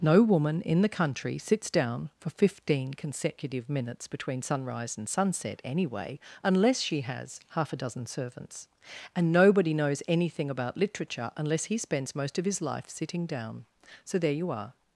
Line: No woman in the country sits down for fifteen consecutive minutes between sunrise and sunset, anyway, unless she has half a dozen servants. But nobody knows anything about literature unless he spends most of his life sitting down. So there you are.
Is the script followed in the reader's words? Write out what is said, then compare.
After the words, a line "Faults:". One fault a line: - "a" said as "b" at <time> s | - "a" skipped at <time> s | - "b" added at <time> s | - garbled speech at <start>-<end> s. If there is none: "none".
No woman in the country sits down for fifteen consecutive minutes between sunrise and sunset, anyway, unless she has half a dozen servants. And nobody knows anything about literature unless he spends most of his life sitting down. So there you are.
Faults:
- "But" said as "And" at 9.2 s